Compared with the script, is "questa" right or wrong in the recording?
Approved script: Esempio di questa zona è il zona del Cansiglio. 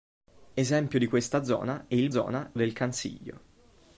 right